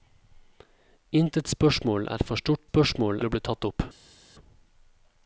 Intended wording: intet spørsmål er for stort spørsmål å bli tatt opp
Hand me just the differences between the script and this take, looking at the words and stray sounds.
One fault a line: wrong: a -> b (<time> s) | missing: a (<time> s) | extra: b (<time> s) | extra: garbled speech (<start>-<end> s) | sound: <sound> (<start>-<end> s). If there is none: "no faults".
no faults